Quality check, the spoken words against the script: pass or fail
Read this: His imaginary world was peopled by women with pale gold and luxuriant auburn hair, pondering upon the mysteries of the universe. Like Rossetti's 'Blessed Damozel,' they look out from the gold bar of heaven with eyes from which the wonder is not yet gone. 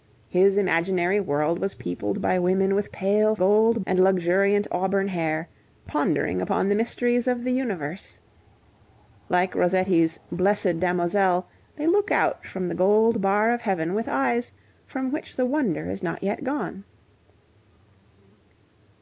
pass